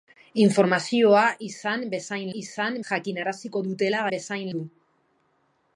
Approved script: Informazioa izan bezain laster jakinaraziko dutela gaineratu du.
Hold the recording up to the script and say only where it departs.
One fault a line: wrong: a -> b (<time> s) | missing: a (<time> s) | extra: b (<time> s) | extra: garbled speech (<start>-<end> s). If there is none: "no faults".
wrong: laster -> izan (2.4 s)
wrong: gaineratu -> bezain (4.1 s)